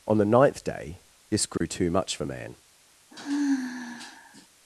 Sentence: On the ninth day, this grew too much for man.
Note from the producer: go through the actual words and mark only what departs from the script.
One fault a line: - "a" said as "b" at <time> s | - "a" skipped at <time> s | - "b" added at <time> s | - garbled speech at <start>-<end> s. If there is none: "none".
none